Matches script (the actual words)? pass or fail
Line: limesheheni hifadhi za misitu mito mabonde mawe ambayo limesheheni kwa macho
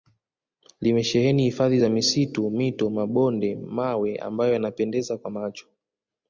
fail